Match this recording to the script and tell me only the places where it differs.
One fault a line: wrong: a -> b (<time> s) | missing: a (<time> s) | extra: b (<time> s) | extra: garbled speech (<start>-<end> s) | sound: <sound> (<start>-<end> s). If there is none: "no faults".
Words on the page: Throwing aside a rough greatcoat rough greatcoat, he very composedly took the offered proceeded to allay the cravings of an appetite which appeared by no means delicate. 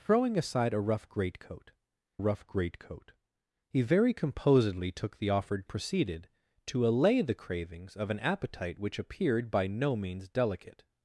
no faults